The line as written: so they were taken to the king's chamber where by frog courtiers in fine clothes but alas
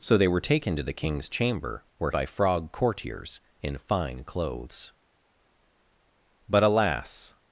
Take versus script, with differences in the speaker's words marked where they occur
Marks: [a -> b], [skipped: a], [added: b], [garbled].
so they were taken to the king's chamber where by frog courtiers in fine clothes but alas